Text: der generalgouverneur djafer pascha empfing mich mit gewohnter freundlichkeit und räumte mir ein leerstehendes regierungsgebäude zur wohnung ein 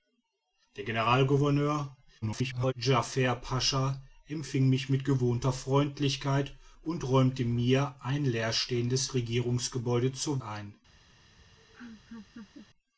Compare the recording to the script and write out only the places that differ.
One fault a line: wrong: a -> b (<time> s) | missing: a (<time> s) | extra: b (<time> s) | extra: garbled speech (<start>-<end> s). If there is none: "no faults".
extra: garbled speech (2.2-2.7 s)
missing: wohnung (10.4 s)